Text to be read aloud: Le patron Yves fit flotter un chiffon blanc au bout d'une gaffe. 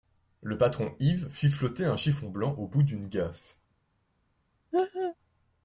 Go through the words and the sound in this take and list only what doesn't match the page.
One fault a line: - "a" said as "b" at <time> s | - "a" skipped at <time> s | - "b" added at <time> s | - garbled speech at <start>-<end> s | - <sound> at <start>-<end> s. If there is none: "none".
- laugh at 4.7-5.2 s